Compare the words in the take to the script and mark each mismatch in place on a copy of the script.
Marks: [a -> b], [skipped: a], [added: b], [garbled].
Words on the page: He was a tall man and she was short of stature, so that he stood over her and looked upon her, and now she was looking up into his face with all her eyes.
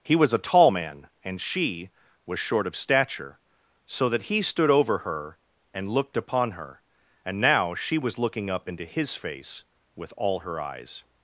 He was a tall man and she was short of stature, so that he stood over her and looked upon her, and now she was looking up into his face with all her eyes.